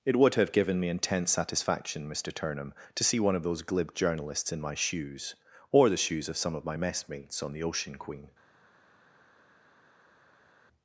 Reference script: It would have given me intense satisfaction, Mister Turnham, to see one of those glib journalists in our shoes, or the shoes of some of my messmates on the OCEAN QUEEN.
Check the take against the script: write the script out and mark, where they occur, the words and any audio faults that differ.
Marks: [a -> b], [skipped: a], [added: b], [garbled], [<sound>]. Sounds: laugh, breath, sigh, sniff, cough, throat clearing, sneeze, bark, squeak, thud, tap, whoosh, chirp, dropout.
It would have given me intense satisfaction, Mister Turnham, to see one of those glib journalists in [our -> my] shoes, or the shoes of some of my messmates on the OCEAN QUEEN.